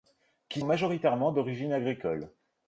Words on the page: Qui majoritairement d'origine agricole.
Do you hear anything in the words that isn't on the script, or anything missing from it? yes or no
no